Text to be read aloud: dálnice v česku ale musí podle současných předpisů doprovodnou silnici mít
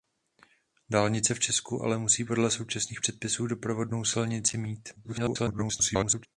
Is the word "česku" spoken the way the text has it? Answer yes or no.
yes